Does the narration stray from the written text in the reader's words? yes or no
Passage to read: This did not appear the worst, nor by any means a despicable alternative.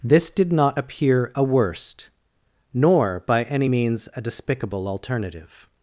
yes